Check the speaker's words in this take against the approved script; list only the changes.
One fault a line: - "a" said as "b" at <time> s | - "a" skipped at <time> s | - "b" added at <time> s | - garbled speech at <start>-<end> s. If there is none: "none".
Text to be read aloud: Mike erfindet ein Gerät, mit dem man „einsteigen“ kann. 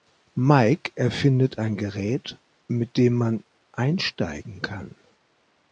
none